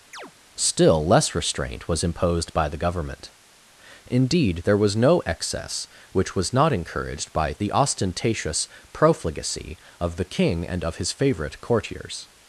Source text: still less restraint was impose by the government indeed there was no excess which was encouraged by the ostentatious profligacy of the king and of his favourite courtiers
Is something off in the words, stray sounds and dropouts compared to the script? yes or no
yes